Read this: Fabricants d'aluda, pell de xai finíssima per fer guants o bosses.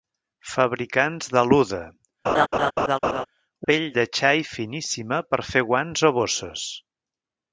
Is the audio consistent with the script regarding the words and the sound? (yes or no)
no